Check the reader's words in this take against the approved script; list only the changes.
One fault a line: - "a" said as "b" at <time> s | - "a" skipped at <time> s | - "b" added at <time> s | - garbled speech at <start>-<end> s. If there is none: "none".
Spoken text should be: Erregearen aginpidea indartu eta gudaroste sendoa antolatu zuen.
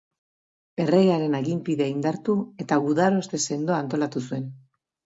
none